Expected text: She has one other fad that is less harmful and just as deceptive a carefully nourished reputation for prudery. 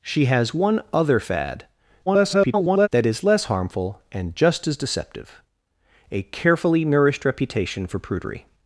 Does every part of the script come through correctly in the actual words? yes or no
no